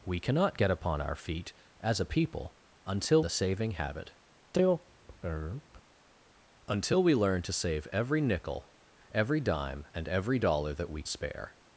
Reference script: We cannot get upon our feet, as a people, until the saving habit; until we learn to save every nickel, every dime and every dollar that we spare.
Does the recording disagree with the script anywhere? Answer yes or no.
no